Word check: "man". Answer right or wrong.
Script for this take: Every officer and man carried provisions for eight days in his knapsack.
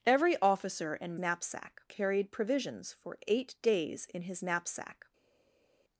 wrong